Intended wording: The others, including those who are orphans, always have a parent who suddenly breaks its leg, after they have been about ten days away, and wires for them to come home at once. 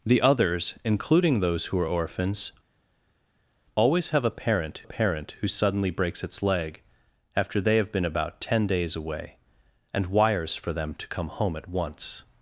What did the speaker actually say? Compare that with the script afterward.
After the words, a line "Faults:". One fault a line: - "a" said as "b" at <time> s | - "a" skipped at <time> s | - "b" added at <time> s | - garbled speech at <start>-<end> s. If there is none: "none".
The others, including those who are orphans, always have a parent parent who suddenly breaks its leg, after they have been about ten days away, and wires for them to come home at once.
Faults:
- "parent" added at 4.8 s